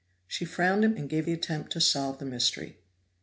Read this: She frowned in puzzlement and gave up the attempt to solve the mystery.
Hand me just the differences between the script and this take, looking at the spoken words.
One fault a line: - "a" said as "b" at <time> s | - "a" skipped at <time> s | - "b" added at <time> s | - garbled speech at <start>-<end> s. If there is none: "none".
- "puzzlement" skipped at 0.9 s
- "up" skipped at 1.3 s